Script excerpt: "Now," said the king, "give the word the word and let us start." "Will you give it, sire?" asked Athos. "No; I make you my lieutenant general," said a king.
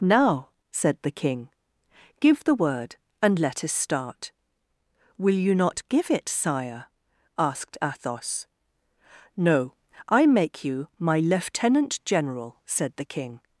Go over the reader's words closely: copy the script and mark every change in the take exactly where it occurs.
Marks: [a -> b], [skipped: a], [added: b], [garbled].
"Now," said the king, "give the word [skipped: the word] and let us start." "Will you [added: not] give it, sire?" asked Athos. "No; I make you my lieutenant general," said [a -> the] king.